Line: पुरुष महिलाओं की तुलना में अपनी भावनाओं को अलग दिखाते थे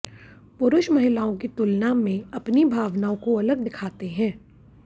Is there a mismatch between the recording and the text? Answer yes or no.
yes